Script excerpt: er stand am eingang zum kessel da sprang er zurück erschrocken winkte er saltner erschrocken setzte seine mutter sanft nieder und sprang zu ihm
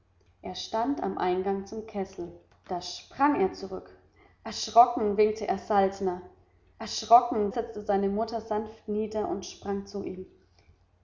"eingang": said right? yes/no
yes